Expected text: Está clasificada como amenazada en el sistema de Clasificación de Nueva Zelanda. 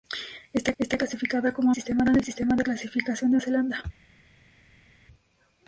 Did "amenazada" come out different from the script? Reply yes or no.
yes